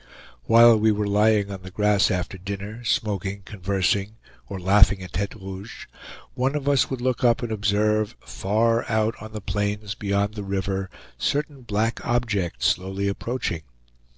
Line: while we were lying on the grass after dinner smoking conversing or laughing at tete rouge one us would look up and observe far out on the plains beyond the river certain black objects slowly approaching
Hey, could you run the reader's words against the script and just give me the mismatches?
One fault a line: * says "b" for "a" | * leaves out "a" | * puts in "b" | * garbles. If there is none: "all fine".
* puts in "of"